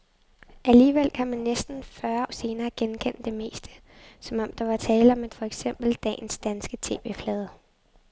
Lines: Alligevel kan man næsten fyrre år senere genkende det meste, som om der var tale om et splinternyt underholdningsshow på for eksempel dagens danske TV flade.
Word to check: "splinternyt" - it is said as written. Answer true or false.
false